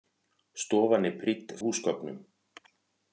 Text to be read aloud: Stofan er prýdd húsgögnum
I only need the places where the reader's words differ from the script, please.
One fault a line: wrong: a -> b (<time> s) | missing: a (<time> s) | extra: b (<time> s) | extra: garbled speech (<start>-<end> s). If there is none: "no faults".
no faults